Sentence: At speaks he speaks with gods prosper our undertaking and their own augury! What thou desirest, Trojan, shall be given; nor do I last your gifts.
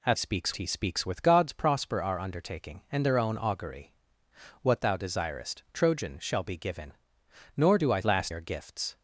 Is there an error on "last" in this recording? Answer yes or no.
no